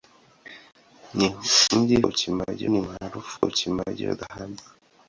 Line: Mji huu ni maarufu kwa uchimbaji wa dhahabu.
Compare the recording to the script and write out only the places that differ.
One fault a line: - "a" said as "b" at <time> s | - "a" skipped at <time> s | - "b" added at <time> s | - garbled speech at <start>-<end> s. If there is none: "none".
- "huu" said as "uchimbaji" at 2.1 s
- "kwa" skipped at 3.4 s